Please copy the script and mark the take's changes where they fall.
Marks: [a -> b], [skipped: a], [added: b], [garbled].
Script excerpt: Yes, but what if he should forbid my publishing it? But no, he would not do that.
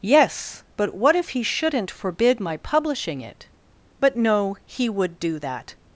Yes, but what if he [should -> shouldn't] forbid my publishing it? But no, he would [skipped: not] do that.